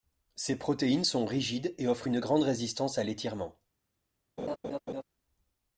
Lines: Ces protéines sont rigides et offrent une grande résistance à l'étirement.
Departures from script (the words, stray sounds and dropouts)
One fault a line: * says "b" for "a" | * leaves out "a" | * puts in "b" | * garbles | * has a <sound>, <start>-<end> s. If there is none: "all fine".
* has a laugh, 4.4-5.0 s